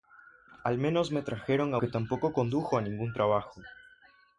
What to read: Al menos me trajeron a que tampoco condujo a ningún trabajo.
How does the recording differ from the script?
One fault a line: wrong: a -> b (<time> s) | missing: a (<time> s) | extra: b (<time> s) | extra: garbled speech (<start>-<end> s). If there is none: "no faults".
no faults